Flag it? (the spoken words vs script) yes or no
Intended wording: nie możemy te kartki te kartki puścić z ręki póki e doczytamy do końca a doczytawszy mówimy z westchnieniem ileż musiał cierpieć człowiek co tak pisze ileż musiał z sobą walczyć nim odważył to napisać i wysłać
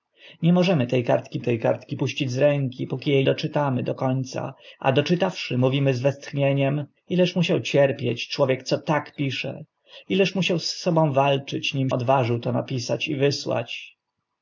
no